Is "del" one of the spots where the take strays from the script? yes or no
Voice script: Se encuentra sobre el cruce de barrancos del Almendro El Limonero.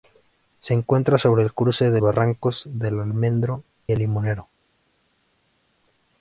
no